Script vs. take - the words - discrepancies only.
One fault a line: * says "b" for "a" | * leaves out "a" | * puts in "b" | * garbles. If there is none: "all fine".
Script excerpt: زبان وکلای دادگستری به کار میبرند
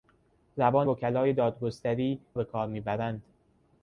all fine